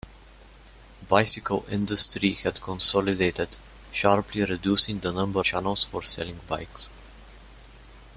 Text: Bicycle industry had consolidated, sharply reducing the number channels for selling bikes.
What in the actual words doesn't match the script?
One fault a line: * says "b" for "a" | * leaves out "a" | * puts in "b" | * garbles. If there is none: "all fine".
all fine